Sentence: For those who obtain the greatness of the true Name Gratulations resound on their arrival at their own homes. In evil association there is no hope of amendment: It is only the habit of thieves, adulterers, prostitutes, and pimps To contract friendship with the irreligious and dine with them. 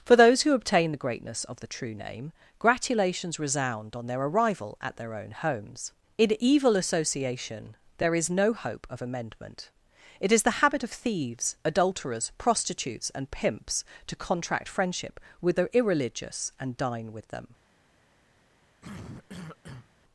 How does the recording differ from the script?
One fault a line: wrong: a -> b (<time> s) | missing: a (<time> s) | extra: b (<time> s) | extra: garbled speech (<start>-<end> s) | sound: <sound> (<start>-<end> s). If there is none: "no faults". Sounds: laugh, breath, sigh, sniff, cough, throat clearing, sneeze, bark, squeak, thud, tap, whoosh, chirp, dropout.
missing: only (10.4 s)
sound: cough (18.8-19.9 s)